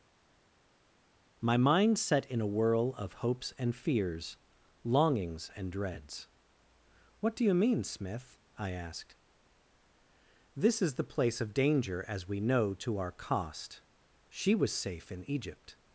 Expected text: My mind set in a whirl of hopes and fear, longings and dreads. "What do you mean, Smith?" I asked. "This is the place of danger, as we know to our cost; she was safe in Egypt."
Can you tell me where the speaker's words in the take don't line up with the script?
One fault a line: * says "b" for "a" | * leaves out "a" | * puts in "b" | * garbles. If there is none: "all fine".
* says "fears" for "fear"